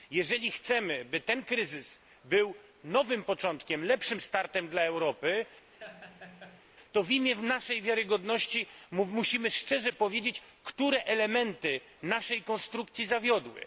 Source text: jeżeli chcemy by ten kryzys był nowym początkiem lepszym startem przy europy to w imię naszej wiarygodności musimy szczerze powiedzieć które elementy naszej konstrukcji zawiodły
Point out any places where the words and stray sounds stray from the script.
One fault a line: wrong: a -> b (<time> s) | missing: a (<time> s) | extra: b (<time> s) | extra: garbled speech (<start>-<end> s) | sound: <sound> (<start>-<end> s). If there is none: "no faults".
wrong: przy -> dla (4.7 s)
sound: laugh (5.7-6.6 s)